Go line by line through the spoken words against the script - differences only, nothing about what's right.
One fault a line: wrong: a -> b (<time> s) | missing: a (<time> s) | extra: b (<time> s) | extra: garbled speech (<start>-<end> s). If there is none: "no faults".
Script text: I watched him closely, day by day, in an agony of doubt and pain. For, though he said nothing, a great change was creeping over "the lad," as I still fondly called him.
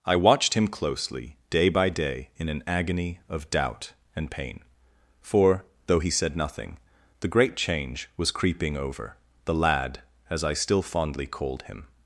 wrong: a -> the (7.2 s)